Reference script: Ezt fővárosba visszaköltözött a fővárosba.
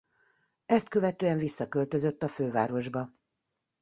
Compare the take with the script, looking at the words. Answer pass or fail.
fail